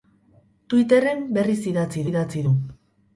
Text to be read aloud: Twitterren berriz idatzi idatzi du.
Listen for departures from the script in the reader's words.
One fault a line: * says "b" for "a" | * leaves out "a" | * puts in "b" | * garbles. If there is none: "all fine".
all fine